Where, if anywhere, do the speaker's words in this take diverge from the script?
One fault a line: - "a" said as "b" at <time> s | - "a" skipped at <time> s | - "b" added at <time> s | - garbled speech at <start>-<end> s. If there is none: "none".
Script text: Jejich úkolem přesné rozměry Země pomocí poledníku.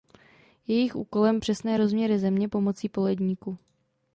none